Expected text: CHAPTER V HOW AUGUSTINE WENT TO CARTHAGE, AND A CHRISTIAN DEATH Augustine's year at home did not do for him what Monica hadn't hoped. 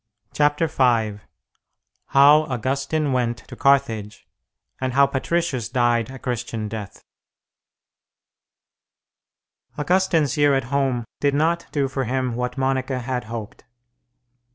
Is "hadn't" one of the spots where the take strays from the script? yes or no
yes